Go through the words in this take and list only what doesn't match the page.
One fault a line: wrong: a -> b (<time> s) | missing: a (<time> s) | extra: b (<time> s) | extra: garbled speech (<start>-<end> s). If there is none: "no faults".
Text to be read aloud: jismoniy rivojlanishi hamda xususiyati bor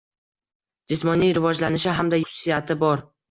no faults